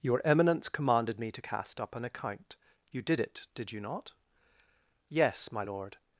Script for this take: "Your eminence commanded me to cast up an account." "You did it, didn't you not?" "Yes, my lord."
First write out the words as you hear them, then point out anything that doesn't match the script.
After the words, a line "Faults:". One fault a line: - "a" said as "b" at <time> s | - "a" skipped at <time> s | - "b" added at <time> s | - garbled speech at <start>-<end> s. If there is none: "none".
"Your eminence commanded me to cast up an account." "You did it, did you not?" "Yes, my lord."
Faults:
- "didn't" said as "did" at 3.6 s